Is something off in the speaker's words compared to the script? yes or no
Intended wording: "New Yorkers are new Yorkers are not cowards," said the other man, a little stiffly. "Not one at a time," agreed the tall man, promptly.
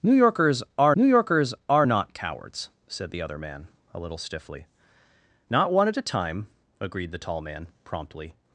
no